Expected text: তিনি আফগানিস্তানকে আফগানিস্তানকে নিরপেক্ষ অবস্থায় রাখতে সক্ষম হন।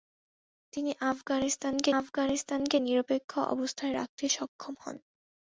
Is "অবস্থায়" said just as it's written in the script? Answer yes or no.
yes